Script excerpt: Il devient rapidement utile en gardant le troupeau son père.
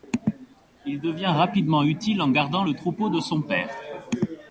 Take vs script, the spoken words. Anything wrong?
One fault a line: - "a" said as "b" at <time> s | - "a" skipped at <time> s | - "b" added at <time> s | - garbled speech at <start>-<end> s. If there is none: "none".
- "de" added at 3.1 s